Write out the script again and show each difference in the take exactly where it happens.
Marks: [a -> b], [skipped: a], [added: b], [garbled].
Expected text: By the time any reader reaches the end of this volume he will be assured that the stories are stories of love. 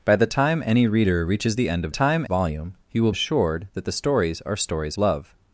By the time any reader reaches the end of [this -> time] volume he will [skipped: be] assured that the stories are stories [skipped: of] love.